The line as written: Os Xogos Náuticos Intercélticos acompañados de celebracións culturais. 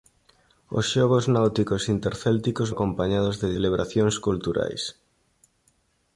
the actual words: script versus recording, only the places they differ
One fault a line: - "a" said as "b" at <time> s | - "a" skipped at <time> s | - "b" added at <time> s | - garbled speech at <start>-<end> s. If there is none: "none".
none